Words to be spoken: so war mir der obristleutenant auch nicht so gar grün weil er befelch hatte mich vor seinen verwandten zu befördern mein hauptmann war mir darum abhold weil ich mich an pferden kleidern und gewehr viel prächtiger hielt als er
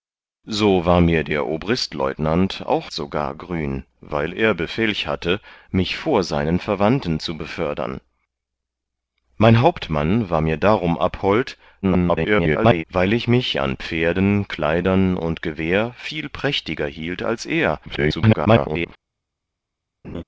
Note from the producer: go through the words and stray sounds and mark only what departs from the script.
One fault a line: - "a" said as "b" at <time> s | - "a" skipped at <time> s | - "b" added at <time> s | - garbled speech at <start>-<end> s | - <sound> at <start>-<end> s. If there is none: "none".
- "nicht" skipped at 2.9 s
- garbled speech at 11.8-12.8 s
- garbled speech at 17.9-18.9 s
- laugh at 20.0-20.2 s